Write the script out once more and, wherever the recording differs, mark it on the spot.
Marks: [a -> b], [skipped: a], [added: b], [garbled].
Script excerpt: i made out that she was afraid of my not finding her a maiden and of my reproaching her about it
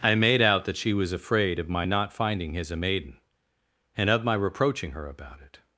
i made out that she was afraid of my not finding [her -> his] a maiden and of my reproaching her about it